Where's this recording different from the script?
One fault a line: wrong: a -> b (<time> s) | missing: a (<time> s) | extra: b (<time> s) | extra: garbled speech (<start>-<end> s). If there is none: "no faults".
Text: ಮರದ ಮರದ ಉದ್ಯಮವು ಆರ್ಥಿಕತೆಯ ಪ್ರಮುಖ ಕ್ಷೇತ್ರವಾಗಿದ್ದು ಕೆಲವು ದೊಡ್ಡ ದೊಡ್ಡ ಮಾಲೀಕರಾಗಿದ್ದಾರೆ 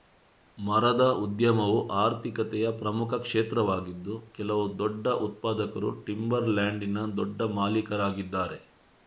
missing: ಮರದ (1.0 s)
extra: ಉತ್ಪಾದಕರು ಟಿಂಬರ್ ಲ್ಯಾಂಡಿನ (5.3 s)